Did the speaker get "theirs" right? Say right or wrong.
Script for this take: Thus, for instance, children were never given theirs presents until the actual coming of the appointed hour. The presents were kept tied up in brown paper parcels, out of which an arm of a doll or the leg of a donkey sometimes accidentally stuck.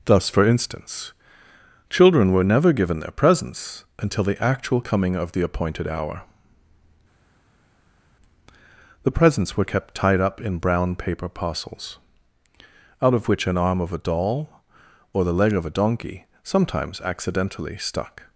wrong